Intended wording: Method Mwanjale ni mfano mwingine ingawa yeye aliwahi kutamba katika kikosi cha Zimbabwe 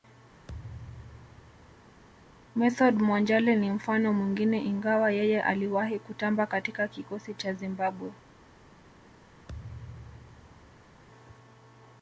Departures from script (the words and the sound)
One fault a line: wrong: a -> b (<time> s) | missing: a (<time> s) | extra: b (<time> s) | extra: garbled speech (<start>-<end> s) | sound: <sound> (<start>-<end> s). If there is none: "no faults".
sound: thud (0.5-2.0 s)
sound: thud (9.5-11.0 s)